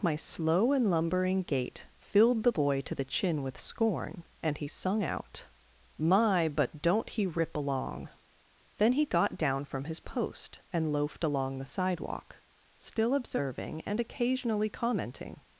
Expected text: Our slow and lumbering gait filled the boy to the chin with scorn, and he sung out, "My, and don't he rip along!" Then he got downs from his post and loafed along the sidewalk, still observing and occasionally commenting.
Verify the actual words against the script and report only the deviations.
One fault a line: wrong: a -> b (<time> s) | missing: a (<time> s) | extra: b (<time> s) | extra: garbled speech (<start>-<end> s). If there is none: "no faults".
wrong: Our -> My (0.0 s)
wrong: and -> but (6.5 s)
wrong: downs -> down (9.4 s)